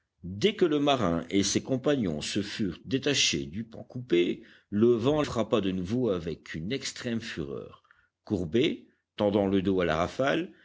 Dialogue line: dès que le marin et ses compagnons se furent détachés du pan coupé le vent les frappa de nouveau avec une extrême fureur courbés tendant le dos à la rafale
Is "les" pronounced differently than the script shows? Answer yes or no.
yes